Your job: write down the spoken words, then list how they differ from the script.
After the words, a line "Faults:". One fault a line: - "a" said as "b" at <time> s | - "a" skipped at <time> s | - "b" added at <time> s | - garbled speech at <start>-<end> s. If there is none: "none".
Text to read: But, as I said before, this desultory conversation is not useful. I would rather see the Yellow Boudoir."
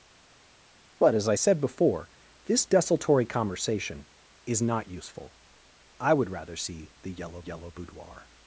But, as I said before, this desultory conversation is not useful. I would rather see the Yellow Yellow Boudoir."
Faults:
- "Yellow" added at 7.4 s